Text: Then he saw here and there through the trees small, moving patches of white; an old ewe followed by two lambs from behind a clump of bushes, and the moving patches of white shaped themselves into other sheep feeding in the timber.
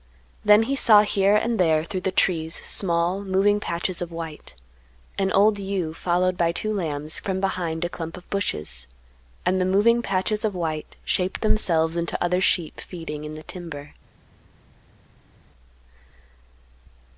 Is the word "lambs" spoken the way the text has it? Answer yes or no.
yes